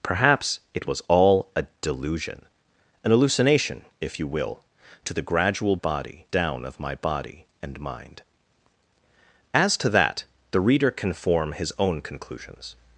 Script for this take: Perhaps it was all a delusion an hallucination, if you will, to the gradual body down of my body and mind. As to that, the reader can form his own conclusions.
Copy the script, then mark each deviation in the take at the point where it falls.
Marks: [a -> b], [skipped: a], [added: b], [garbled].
Perhaps it was all a delusion an hallucination, if you will, to the gradual body down of my body and mind. As to that, the reader can form his own conclusions.